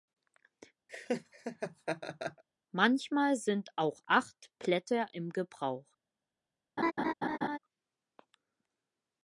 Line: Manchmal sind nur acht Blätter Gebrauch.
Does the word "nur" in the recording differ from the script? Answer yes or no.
yes